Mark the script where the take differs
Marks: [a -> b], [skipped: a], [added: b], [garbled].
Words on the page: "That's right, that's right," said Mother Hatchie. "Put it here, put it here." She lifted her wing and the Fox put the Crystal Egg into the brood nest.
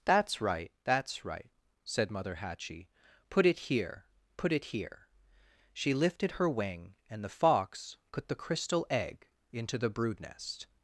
"That's right, that's right," said Mother Hatchie. "Put it here, put it here." She lifted her wing and the Fox put the Crystal Egg into the brood nest.